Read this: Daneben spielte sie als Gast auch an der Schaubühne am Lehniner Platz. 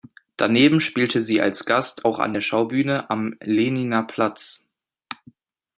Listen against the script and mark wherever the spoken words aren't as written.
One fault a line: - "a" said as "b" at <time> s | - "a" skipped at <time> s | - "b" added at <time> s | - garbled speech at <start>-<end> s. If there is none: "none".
none